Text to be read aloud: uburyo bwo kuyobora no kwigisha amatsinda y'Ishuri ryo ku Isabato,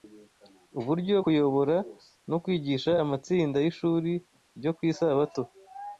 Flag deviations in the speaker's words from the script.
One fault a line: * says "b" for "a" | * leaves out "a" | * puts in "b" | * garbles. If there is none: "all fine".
* leaves out "bwo"